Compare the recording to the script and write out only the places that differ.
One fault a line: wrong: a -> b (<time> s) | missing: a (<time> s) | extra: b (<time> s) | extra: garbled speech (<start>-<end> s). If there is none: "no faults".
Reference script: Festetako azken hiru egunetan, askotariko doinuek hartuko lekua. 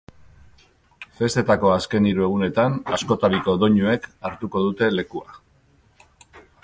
extra: dute (4.7 s)